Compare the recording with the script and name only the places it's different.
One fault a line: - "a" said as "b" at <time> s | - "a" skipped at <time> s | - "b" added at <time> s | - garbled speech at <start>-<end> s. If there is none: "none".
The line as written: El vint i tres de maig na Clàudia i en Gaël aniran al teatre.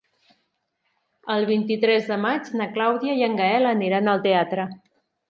none